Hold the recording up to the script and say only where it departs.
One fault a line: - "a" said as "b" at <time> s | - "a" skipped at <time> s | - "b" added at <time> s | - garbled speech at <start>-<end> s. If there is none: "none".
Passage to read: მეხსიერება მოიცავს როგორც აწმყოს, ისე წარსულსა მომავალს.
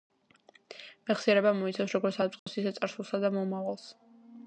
- "და" added at 3.3 s